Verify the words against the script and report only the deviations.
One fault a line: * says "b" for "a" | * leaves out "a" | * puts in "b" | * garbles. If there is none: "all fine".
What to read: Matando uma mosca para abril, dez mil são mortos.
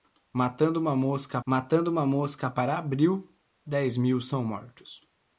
* puts in "matando uma mosca"